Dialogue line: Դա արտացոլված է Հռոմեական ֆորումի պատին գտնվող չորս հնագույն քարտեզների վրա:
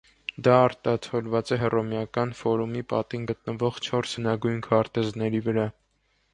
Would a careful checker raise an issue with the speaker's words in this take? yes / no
no